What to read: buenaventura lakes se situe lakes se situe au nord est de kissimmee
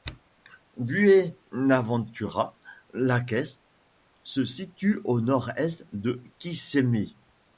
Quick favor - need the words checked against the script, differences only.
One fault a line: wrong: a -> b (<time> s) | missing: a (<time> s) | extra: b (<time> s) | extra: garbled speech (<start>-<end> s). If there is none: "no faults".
missing: lakes se situe (5.0 s)